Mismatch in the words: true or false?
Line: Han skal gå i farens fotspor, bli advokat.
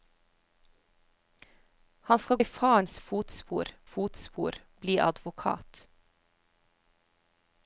true